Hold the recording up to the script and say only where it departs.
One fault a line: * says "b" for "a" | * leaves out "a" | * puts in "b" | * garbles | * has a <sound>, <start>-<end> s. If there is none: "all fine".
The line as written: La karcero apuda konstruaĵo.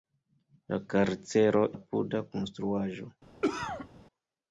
* has a cough, 3.4-3.9 s